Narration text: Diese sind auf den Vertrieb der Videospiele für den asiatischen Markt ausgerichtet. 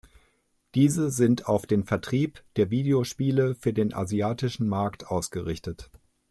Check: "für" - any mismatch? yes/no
no